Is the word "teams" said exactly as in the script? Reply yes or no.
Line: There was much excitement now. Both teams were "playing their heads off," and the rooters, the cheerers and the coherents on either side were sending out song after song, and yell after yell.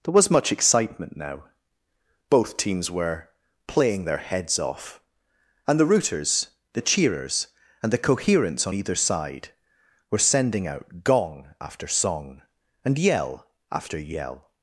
yes